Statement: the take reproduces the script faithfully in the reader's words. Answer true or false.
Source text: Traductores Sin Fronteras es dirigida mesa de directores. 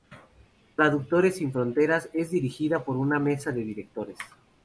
false